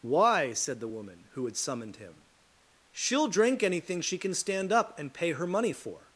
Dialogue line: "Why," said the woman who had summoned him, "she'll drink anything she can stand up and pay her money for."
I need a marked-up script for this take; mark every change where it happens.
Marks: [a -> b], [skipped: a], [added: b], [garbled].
"Why," said the woman who had summoned him, "she'll drink anything she can stand up and pay her money for."